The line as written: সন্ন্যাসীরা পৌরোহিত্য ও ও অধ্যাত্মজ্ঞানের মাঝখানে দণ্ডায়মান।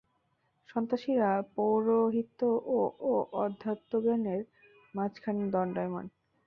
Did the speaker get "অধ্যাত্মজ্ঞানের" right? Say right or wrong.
right